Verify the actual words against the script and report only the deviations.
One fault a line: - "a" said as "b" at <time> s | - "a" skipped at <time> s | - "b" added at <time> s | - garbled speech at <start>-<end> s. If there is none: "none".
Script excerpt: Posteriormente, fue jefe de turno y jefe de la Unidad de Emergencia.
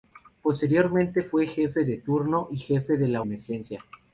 - "Unidad de" skipped at 3.2 s